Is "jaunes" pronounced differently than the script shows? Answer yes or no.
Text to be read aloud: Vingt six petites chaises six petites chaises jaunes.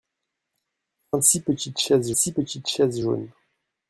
no